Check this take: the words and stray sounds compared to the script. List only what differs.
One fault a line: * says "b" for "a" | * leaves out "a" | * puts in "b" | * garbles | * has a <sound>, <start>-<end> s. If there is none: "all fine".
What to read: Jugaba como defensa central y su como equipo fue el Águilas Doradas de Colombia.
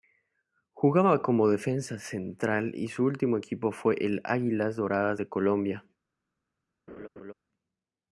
* says "último" for "como"
* has a laugh, 6.9-7.3 s